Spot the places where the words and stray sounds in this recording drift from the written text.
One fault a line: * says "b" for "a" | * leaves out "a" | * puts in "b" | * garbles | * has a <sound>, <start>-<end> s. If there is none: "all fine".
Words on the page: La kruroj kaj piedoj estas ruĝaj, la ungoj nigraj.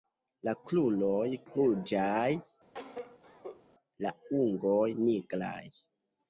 * leaves out "kaj piedoj estas"
* has a cough, 2.7-3.6 s